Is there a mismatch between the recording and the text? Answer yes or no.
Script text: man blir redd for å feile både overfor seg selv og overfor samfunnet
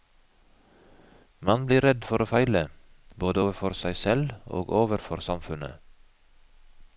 no